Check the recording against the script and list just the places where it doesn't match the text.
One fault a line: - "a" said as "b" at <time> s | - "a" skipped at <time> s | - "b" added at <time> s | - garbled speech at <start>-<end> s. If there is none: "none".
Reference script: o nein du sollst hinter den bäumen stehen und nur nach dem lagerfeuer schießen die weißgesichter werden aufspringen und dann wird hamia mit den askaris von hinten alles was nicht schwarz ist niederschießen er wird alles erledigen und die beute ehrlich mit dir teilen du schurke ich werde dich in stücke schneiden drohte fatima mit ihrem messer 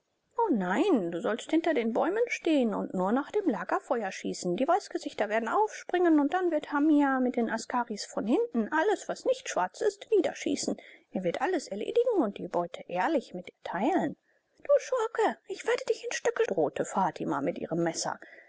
- "schneiden" skipped at 16.4 s